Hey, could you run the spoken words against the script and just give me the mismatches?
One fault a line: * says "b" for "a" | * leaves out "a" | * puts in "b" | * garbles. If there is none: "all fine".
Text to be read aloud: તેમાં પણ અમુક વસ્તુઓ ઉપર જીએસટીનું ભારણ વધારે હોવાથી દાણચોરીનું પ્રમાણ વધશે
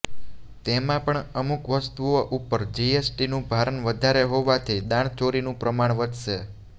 all fine